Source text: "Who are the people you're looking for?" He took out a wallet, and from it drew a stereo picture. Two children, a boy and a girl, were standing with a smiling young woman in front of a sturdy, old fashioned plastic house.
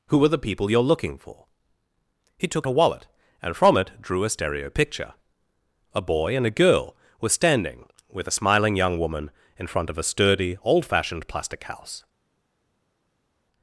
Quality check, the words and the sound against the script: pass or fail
fail